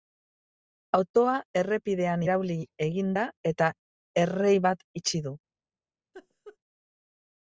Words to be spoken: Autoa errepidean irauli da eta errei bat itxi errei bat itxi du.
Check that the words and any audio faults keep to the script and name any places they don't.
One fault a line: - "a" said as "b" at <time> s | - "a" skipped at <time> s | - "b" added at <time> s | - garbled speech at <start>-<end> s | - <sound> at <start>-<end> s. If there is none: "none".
- "egin" added at 2.9 s
- "errei bat itxi" skipped at 5.2 s
- laugh at 6.1-6.6 s